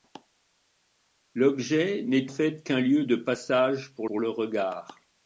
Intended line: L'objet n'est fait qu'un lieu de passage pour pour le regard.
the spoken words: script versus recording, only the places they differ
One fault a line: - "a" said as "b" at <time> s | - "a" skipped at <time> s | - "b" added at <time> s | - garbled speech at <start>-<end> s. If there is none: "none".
none